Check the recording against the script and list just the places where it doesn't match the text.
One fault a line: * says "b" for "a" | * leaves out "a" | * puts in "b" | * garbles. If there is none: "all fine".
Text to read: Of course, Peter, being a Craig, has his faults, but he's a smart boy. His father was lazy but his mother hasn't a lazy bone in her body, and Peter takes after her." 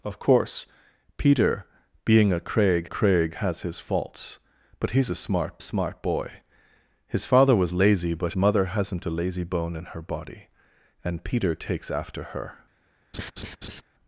* puts in "Craig"
* puts in "smart"
* leaves out "his"